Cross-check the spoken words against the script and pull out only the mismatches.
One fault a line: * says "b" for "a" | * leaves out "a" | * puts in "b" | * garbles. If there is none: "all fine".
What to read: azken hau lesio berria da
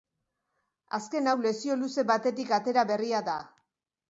* puts in "luze batetik atera"